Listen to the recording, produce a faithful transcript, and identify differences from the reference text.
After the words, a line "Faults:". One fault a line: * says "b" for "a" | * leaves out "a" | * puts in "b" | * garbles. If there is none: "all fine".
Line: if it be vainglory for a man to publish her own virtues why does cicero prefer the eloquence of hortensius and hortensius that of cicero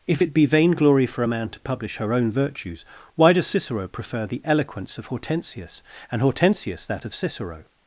if it be vainglory for a man to publish her own virtues why does cicero prefer the eloquence of hortensius and hortensius that of cicero
Faults:
all fine